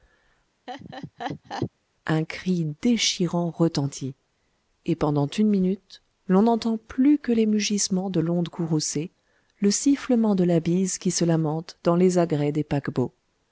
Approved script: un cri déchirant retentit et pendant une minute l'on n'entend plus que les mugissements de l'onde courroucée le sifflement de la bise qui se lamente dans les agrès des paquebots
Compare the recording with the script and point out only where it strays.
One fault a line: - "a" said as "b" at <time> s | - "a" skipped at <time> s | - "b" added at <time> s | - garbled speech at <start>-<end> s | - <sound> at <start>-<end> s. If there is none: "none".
- laugh at 0.7-1.7 s